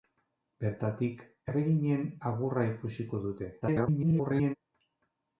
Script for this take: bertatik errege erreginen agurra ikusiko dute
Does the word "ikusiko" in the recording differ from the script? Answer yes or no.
no